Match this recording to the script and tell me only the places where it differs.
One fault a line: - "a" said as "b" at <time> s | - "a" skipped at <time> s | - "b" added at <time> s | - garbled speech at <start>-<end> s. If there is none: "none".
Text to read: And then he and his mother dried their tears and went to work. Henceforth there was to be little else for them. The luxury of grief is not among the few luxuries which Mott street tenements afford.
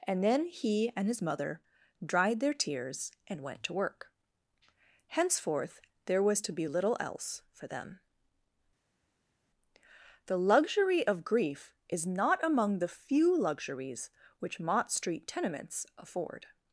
none